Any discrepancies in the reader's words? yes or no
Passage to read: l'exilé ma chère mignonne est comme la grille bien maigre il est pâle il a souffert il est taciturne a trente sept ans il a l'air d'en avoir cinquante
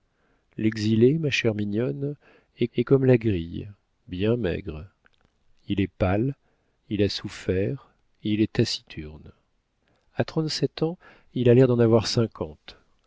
yes